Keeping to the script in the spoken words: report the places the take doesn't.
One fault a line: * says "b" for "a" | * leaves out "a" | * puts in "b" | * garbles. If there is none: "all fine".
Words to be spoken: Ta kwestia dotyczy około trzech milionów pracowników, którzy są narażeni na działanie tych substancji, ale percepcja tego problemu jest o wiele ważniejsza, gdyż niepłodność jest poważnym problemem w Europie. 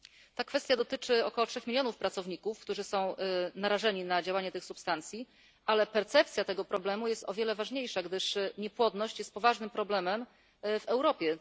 all fine